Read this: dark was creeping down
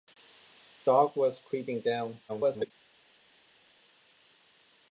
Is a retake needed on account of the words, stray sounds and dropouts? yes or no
yes